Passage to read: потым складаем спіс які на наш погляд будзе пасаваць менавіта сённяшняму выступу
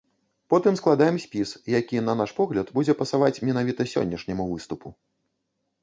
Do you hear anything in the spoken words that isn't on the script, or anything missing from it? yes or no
no